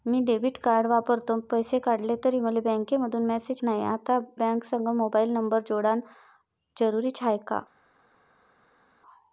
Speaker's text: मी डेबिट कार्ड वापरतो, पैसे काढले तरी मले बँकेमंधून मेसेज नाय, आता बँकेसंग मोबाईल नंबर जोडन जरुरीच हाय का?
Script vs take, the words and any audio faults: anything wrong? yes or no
no